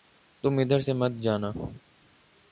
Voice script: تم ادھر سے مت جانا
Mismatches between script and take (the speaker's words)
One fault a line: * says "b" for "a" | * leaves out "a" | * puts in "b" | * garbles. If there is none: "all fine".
all fine